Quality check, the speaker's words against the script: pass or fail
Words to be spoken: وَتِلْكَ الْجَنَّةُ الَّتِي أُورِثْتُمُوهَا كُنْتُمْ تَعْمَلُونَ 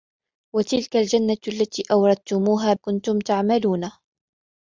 pass